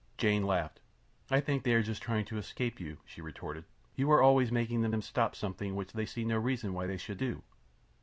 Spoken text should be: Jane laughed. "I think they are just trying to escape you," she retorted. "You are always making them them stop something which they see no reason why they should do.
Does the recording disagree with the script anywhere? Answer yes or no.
no